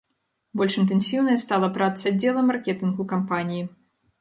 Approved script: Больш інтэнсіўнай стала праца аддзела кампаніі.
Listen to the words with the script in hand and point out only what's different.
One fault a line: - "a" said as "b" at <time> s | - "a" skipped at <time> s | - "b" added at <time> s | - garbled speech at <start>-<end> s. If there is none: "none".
- "маркетынгу" added at 2.5 s